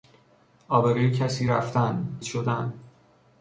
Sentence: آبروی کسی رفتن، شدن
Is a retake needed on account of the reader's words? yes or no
no